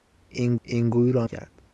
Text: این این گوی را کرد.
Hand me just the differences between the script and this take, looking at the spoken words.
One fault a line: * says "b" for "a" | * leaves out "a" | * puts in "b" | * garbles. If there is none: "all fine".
all fine